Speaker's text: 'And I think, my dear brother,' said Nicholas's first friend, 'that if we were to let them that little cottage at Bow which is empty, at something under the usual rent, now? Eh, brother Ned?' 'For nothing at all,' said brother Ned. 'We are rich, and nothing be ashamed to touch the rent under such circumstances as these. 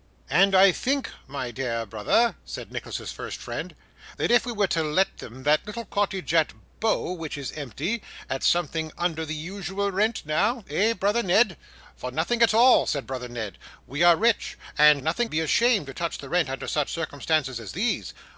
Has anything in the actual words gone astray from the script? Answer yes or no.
no